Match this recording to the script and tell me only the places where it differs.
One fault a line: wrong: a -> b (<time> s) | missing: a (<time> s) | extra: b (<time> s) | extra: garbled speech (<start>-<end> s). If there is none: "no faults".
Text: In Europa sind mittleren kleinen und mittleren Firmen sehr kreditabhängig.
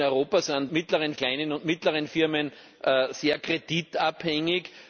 no faults